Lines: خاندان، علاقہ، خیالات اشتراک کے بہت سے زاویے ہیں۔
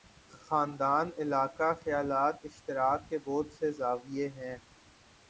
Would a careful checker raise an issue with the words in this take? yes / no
no